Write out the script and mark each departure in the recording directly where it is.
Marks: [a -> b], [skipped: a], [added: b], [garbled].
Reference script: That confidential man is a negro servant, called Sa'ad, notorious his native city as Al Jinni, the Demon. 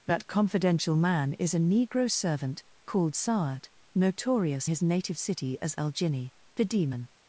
That confidential man is a negro servant, called Sa'ad, notorious his native city as Al Jinni, the Demon.